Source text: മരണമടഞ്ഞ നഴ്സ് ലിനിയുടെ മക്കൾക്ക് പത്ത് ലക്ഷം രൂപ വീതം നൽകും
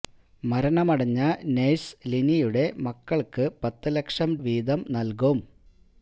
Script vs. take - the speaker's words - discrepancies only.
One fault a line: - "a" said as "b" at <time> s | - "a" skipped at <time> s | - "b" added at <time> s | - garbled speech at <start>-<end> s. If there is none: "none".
- "രൂപ" skipped at 4.3 s